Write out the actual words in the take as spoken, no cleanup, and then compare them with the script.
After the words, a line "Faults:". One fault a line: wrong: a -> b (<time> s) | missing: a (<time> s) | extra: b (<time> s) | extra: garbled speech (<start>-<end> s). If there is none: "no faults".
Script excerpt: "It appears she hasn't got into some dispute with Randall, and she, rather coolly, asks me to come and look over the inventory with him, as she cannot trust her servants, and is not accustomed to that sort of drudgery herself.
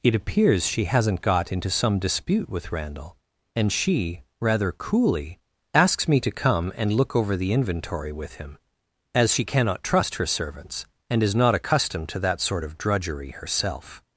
"It appears she hasn't got into some dispute with Randall, and she, rather coolly, asks me to come and look over the inventory with him, as she cannot trust her servants, and is not accustomed to that sort of drudgery herself.
Faults:
no faults